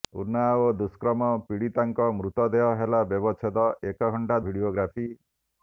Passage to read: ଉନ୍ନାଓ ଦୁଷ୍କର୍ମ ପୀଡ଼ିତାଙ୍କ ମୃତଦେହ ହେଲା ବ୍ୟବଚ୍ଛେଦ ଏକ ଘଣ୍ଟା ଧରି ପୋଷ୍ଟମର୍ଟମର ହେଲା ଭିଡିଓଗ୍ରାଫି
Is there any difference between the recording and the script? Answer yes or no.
yes